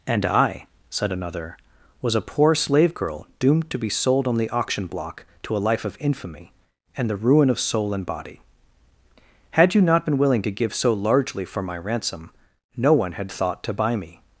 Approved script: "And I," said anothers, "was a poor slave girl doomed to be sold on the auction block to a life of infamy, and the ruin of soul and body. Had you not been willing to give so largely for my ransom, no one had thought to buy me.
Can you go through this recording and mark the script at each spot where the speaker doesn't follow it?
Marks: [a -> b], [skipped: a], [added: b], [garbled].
"And I," said [anothers, -> another] "was a poor slave girl doomed to be sold on the auction block to a life of infamy, and the ruin of soul and body. Had you not been willing to give so largely for my ransom, no one had thought to buy me.